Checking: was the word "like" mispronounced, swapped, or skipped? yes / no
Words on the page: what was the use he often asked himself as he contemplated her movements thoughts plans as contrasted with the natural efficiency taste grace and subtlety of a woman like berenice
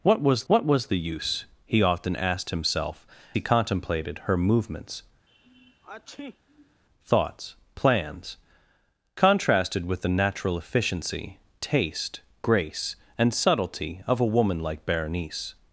no